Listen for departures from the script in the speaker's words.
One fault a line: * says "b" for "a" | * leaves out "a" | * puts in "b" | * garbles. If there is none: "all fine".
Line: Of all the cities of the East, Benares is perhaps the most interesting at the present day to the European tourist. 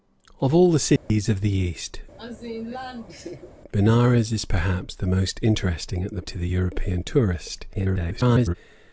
* leaves out "present day"
* garbles